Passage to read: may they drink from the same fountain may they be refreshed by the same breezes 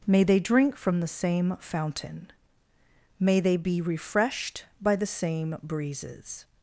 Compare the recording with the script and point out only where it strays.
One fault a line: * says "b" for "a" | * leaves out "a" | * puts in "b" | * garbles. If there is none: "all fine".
all fine